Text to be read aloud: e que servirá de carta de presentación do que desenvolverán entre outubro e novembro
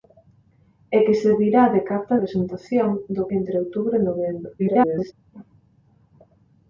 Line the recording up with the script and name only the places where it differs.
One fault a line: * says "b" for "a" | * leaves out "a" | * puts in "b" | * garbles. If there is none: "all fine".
* leaves out "de"
* leaves out "que desenvolverán"
* garbles